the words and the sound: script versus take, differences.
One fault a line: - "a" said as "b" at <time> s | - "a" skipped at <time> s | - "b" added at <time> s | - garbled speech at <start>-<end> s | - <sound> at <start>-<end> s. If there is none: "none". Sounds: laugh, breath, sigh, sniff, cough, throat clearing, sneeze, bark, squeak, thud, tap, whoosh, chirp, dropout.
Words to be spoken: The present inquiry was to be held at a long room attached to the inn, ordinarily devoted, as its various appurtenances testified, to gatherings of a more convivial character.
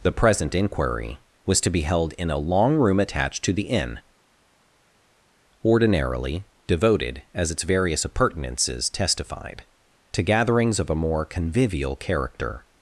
- "at" said as "in" at 2.1 s